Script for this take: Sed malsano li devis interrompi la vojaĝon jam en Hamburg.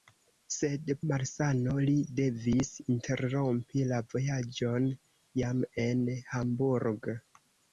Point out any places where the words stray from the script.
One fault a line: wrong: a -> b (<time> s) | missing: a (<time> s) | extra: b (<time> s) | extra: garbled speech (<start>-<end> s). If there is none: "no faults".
no faults